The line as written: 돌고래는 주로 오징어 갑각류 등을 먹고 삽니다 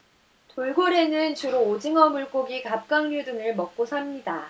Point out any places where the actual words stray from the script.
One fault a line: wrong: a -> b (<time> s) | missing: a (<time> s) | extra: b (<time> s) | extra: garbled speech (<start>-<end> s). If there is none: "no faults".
extra: 물고기 (2.1 s)